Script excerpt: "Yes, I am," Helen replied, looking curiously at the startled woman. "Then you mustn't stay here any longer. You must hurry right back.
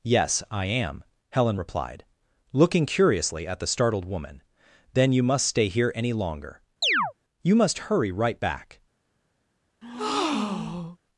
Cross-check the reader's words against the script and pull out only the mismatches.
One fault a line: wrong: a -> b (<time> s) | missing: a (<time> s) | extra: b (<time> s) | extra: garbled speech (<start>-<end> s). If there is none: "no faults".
wrong: mustn't -> must (5.2 s)